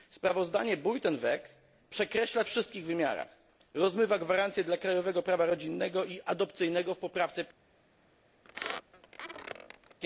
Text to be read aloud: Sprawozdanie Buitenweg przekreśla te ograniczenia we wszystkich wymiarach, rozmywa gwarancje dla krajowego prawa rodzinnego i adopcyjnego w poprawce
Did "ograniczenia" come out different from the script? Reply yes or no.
yes